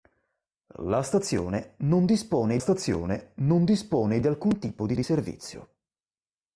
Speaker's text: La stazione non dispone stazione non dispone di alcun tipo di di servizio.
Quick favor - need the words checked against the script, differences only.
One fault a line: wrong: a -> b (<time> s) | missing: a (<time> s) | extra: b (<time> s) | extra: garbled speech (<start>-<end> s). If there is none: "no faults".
no faults